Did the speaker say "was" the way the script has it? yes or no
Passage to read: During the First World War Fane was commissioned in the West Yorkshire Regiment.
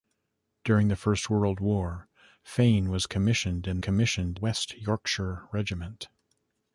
yes